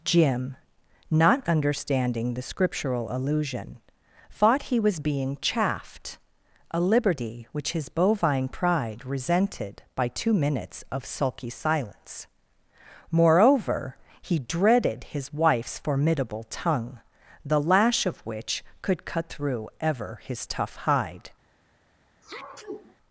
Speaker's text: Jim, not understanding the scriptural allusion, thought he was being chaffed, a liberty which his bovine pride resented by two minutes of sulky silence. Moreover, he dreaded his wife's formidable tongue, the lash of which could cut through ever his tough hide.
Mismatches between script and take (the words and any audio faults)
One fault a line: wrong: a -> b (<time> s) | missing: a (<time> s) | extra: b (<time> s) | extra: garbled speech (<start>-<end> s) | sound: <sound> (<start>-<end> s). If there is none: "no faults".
sound: sneeze (22.2-23.0 s)